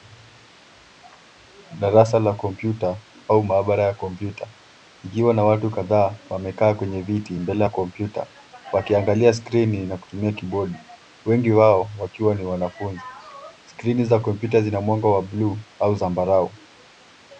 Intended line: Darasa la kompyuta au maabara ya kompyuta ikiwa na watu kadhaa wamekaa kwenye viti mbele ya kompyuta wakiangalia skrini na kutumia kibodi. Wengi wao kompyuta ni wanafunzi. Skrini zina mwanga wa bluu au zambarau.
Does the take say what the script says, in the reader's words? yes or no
no